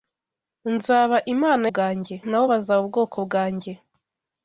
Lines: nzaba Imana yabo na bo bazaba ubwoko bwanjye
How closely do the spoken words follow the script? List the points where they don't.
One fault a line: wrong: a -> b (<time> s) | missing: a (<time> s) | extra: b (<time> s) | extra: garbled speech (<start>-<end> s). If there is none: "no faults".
wrong: yabo -> bwanjye (1.7 s)